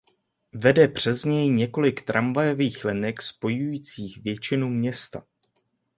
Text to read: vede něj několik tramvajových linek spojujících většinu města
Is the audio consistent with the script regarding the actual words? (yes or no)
no